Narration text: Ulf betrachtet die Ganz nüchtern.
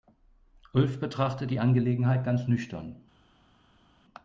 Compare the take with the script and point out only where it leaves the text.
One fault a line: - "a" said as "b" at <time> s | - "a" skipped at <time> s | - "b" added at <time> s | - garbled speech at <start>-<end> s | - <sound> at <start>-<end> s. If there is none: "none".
- "Angelegenheit" added at 1.6 s